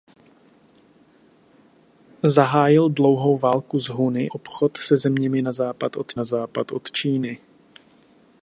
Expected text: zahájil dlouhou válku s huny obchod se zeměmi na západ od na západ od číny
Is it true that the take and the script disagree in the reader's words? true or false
false